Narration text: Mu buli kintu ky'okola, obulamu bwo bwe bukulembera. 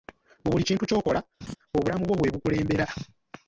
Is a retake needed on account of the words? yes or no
no